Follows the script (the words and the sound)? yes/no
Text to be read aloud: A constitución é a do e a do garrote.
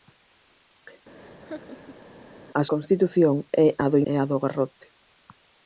no